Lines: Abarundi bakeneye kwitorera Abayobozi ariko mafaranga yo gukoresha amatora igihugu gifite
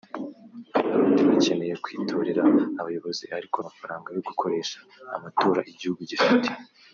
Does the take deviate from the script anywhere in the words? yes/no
no